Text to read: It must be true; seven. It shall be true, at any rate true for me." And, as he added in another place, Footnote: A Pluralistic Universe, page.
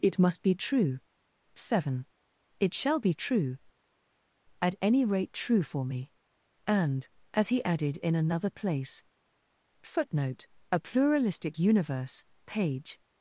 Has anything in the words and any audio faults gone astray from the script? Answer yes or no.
no